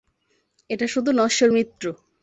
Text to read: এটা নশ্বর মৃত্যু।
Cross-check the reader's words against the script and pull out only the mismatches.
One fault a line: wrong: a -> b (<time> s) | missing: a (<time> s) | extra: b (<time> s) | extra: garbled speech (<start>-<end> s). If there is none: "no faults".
extra: শুধু (0.9 s)